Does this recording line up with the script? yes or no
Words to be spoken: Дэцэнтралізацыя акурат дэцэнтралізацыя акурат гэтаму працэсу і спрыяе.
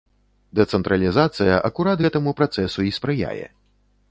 no